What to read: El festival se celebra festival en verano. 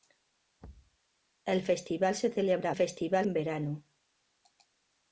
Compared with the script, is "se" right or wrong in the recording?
right